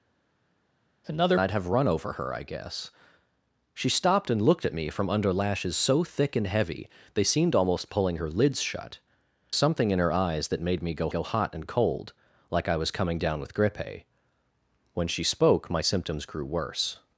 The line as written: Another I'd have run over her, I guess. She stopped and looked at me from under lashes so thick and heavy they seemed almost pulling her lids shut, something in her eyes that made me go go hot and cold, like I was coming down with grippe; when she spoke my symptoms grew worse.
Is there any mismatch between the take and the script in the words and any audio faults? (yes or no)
no